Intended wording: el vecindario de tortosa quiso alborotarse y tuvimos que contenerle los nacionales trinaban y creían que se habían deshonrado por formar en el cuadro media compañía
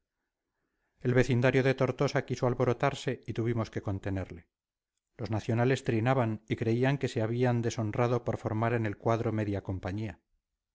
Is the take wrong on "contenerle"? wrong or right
right